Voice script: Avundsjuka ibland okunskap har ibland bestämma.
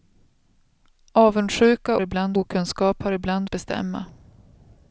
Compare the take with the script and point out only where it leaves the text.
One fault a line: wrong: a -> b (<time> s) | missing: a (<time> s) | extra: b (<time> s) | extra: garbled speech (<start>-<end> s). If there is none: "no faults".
no faults